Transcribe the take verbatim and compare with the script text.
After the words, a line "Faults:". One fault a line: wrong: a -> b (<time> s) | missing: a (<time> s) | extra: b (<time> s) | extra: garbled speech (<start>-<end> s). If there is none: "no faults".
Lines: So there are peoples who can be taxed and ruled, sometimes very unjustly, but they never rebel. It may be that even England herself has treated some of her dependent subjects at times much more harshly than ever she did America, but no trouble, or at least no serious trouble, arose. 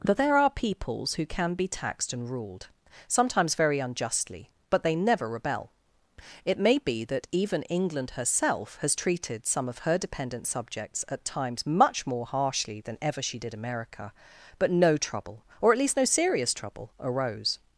That there are peoples who can be taxed and ruled, sometimes very unjustly, but they never rebel. It may be that even England herself has treated some of her dependent subjects at times much more harshly than ever she did America, but no trouble, or at least no serious trouble, arose.
Faults:
wrong: So -> That (0.0 s)